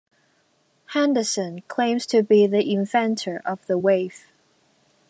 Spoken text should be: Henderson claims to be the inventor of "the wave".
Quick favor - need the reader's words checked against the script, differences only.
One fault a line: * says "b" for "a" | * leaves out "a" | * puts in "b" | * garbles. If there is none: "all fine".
all fine